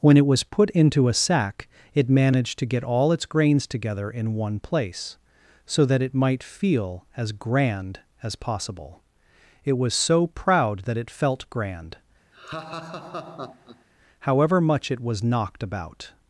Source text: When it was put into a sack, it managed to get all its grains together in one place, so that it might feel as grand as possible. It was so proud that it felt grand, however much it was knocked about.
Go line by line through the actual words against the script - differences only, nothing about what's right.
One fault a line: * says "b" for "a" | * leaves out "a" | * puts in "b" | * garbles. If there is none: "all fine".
all fine